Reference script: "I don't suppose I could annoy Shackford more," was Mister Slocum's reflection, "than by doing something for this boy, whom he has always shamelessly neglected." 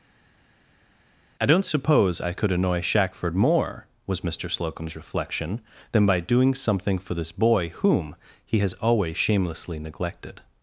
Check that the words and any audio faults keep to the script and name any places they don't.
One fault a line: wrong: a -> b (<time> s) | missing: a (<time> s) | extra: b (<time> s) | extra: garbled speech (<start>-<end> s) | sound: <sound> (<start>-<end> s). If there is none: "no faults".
no faults